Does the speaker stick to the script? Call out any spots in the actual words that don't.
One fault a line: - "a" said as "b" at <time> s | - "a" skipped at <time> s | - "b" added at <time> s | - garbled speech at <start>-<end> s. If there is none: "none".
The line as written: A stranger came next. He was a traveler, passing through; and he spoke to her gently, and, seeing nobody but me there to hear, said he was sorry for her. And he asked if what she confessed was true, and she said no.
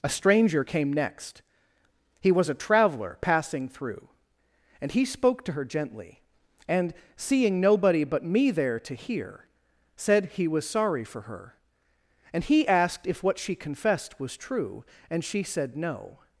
none